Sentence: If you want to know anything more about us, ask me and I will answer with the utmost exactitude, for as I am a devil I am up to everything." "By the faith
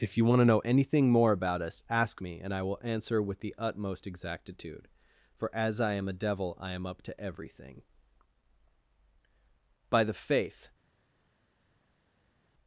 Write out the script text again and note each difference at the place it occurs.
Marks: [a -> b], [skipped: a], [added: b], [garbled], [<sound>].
If you want to know anything more about us, ask me and I will answer with the utmost exactitude, for as I am a devil I am up to everything." "By the faith